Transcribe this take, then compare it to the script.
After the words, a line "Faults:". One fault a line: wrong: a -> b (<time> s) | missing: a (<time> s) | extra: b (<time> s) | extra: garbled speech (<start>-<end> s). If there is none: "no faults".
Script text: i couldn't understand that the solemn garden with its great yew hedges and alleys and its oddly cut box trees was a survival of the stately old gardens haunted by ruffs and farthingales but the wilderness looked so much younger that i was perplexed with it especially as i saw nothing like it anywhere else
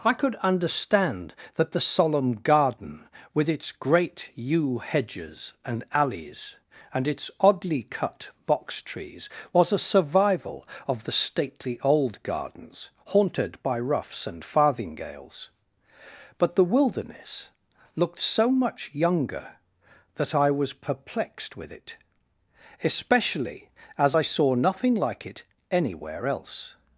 i could understand that the solemn garden with its great yew hedges and alleys and its oddly cut box trees was a survival of the stately old gardens haunted by ruffs and farthingales but the wilderness looked so much younger that i was perplexed with it especially as i saw nothing like it anywhere else
Faults:
wrong: couldn't -> could (0.1 s)